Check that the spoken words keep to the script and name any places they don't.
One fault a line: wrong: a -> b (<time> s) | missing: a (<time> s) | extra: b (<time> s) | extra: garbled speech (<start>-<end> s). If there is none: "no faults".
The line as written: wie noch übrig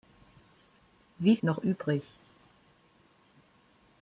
no faults